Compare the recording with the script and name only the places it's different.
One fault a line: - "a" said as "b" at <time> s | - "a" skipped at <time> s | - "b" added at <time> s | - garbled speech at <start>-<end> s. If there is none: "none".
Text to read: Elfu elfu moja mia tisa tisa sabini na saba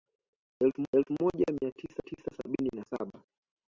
none